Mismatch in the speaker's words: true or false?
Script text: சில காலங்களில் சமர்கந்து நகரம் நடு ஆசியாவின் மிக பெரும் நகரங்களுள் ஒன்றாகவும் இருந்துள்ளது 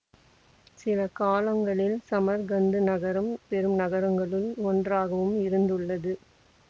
true